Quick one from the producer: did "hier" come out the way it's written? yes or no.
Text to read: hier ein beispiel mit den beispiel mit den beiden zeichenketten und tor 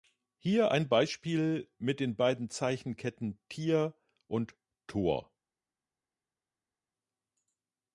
yes